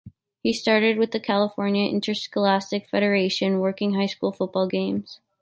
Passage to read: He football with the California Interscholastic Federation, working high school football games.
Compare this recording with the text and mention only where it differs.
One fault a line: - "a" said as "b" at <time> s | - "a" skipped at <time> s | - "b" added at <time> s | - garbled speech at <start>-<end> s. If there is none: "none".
- "football" said as "started" at 0.5 s